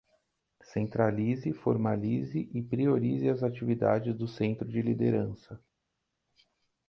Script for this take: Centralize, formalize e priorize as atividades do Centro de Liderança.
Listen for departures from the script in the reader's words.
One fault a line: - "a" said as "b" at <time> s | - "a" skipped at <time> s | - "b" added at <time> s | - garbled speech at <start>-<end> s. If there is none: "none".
none